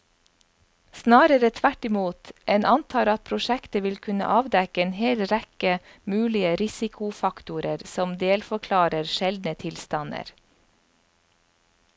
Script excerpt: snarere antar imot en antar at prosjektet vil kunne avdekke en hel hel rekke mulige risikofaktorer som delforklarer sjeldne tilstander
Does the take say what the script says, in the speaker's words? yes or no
no